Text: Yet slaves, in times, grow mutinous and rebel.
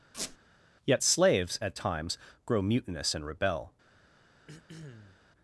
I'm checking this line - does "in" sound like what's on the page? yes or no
no